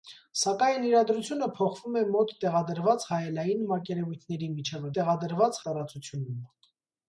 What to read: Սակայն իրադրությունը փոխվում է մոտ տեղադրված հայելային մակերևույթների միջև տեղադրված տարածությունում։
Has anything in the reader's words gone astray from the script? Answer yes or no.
no